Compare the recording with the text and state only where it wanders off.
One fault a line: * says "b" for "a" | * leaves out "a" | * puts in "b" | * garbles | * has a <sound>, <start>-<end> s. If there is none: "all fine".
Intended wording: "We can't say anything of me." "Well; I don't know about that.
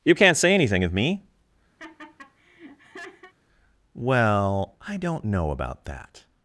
* says "You" for "We"
* has a laugh, 1.8-3.3 s